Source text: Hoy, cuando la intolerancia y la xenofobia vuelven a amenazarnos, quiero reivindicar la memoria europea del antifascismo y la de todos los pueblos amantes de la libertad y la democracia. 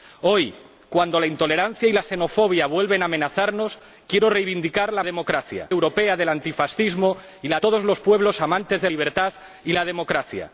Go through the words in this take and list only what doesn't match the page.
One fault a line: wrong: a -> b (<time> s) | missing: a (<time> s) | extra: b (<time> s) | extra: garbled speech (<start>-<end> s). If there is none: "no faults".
wrong: memoria -> democracia (5.0 s)
missing: de (7.6 s)
missing: la (8.9 s)